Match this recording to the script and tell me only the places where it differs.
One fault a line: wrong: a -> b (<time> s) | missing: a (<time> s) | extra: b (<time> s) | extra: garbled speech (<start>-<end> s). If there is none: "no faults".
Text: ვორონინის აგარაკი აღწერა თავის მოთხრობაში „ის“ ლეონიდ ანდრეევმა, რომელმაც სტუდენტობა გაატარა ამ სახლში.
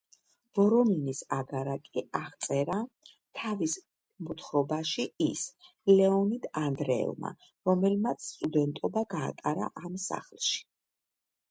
no faults